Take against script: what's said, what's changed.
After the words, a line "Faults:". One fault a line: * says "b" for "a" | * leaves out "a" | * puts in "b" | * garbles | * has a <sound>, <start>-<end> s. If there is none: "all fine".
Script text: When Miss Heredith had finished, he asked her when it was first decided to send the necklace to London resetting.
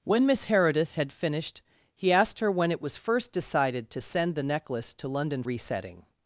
When Miss Heredith had finished, he asked her when it was first decided to send the necklace to London resetting.
Faults:
all fine